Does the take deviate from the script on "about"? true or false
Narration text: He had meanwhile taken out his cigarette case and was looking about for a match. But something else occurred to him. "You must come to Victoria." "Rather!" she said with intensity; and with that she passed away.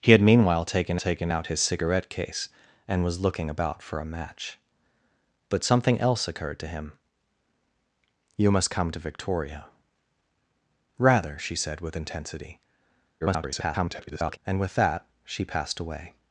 false